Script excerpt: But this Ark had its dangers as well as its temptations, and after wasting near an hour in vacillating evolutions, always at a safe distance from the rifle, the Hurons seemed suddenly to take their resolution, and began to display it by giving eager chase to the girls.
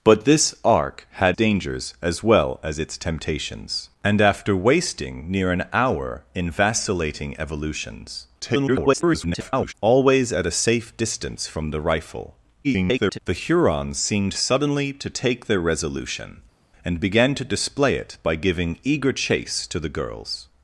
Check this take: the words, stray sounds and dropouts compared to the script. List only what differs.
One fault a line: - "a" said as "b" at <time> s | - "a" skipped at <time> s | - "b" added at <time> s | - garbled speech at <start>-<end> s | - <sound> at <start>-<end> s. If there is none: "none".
- "its" skipped at 1.4 s
- garbled speech at 8.4-9.7 s
- garbled speech at 12.6-13.2 s